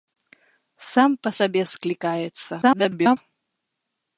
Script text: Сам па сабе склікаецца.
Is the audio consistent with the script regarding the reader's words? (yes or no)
no